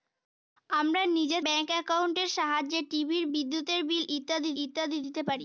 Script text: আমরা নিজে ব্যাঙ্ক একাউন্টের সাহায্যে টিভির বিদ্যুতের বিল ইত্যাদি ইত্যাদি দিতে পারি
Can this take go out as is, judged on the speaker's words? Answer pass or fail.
pass